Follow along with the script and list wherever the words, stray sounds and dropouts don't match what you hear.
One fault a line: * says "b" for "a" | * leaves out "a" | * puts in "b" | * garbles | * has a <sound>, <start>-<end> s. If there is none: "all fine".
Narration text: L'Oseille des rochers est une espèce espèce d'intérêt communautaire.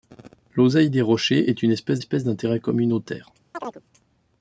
* has a chirp, 3.5-3.8 s